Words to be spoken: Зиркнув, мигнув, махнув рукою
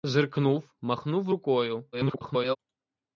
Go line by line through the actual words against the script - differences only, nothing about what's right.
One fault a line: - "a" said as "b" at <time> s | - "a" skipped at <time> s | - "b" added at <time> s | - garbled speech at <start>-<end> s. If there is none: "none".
- "мигнув" skipped at 0.8 s
- garbled speech at 1.9-2.6 s